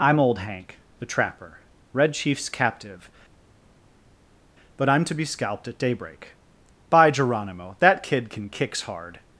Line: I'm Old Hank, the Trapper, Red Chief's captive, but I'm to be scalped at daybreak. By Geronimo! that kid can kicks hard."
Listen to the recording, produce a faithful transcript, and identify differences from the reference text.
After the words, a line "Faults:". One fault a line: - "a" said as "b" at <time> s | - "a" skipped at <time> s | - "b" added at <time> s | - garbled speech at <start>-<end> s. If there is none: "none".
I'm Old Hank, the Trapper, Red Chief's captive, but I'm to be scalped at daybreak. By Geronimo! that kid can kicks hard."
Faults:
none